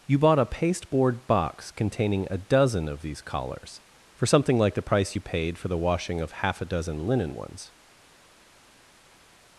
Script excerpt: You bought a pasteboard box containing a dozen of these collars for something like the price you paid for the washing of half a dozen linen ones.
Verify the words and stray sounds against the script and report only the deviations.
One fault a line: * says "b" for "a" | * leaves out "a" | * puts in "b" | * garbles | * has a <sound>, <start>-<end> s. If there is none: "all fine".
all fine